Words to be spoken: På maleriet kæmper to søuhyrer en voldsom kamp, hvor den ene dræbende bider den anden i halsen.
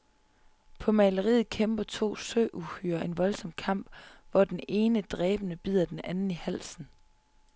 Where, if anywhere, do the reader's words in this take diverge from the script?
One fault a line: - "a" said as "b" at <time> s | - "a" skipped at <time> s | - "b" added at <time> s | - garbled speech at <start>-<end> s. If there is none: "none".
none